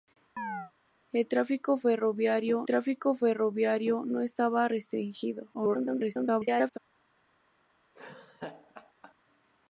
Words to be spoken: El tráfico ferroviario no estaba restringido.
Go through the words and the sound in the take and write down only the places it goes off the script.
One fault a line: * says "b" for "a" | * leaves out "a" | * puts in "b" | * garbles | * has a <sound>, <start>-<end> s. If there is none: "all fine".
* has a chirp, 0.4-0.7 s
* puts in "tráfico ferroviario"
* garbles
* has a laugh, 7.9-9.1 s